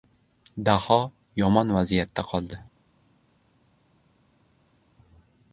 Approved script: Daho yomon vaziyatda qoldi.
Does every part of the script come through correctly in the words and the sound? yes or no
yes